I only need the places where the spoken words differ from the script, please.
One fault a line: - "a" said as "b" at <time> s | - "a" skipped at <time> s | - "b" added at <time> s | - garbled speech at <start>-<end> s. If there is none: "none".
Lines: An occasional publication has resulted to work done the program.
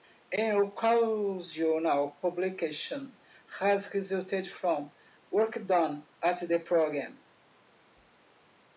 - "to" said as "from" at 4.5 s
- "at" added at 6.2 s